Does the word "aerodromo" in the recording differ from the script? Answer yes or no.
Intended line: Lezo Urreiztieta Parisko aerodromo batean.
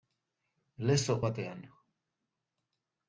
yes